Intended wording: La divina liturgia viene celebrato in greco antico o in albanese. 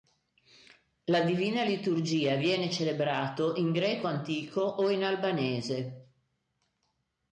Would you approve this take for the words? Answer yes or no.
yes